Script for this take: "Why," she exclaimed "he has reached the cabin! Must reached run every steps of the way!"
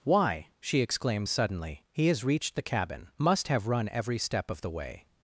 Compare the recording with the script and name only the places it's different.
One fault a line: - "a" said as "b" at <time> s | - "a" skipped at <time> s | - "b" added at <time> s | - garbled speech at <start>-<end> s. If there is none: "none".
- "suddenly" added at 1.3 s
- "reached" said as "have" at 3.5 s
- "steps" said as "step" at 4.2 s